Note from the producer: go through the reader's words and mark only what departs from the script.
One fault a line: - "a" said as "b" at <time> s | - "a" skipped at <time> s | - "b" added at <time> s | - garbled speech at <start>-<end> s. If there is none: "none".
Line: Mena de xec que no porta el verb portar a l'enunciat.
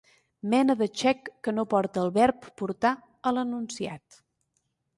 none